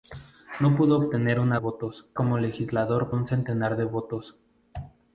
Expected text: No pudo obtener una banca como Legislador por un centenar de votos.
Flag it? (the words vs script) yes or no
yes